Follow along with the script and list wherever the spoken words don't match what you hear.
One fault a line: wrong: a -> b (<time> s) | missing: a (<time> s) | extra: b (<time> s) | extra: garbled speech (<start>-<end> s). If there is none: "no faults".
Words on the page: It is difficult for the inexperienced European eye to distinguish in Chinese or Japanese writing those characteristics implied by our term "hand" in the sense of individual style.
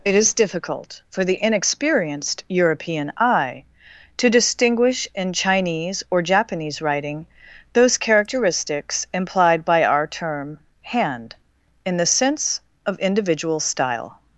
no faults